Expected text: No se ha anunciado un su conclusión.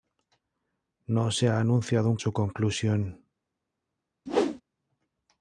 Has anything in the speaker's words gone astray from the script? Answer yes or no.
no